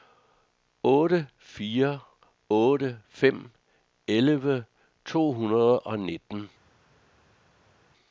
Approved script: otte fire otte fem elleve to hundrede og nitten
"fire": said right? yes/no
yes